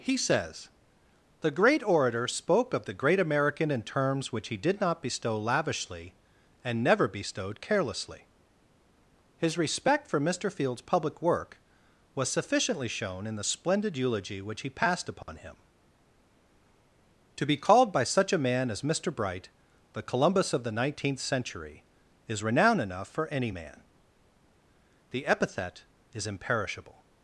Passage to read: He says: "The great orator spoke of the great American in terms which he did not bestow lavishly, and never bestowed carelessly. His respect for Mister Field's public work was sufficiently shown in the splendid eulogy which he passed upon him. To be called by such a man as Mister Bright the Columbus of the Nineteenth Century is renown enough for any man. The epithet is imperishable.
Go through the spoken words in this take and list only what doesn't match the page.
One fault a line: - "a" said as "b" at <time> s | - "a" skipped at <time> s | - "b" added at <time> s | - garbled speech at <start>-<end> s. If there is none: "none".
none